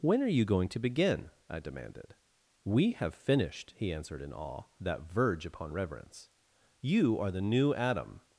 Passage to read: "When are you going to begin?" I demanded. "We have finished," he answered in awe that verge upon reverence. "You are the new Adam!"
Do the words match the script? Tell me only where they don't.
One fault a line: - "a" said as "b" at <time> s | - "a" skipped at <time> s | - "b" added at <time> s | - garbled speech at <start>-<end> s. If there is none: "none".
none